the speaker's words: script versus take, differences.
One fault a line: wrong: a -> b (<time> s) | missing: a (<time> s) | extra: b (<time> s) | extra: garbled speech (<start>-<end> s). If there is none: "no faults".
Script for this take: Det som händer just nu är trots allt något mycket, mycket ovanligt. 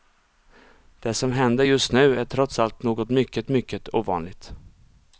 no faults